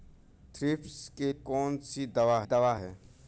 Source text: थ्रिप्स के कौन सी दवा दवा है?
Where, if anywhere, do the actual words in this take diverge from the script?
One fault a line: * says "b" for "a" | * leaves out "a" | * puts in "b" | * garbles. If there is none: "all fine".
all fine